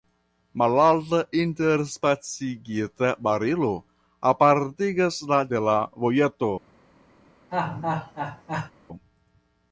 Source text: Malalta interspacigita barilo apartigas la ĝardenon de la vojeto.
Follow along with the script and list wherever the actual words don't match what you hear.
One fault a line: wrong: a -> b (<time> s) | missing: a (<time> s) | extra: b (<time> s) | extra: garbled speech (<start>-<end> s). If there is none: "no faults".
missing: ĝardenon (5.4 s)